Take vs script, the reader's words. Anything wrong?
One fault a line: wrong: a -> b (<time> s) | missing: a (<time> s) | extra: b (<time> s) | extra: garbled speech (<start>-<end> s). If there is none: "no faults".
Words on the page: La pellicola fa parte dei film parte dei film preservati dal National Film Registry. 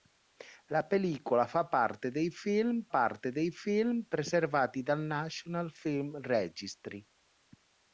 no faults